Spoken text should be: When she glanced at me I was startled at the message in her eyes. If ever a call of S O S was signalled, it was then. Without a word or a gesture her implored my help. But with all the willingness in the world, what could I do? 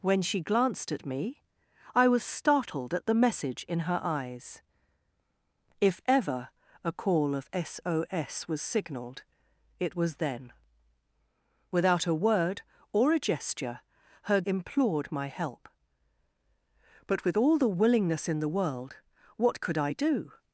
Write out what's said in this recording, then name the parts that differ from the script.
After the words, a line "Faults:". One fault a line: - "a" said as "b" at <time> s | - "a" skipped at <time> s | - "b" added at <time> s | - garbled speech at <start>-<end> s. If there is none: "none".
When she glanced at me I was startled at the message in her eyes. If ever a call of S O S was signalled, it was then. Without a word or a gesture her implored my help. But with all the willingness in the world, what could I do?
Faults:
none